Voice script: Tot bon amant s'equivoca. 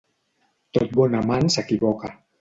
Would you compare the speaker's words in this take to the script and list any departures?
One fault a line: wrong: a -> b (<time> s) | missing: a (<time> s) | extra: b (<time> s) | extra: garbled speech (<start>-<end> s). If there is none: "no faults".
no faults